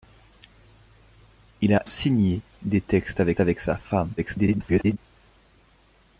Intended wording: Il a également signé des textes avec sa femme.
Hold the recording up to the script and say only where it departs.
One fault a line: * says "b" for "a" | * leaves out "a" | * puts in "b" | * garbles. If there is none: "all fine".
* leaves out "également"
* puts in "avec"
* garbles